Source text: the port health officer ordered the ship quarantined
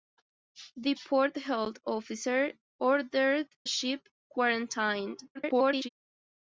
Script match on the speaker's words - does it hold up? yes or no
no